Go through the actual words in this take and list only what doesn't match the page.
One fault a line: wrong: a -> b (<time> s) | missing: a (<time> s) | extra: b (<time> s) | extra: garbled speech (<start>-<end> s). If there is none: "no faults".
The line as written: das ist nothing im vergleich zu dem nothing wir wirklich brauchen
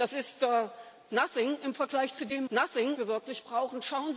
no faults